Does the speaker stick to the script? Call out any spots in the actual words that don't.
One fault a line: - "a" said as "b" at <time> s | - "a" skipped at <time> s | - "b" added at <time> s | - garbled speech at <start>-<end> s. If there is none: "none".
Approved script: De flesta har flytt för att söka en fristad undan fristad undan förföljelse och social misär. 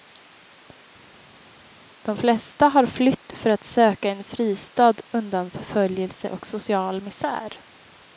- "fristad undan" skipped at 5.5 s